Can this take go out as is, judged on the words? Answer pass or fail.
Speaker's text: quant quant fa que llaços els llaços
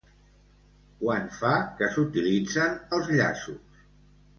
fail